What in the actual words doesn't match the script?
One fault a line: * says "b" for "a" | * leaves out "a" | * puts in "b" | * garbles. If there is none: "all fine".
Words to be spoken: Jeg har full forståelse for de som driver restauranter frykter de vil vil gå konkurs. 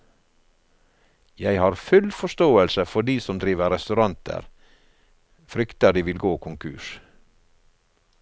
* leaves out "vil"